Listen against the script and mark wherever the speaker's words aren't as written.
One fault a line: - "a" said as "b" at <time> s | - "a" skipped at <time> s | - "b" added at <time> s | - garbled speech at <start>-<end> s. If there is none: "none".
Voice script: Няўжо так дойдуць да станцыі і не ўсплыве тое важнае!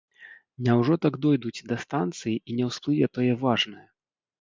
none